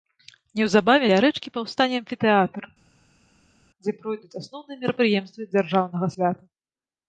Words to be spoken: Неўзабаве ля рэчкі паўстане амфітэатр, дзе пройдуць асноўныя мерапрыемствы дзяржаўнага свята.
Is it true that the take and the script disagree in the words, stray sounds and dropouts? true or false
false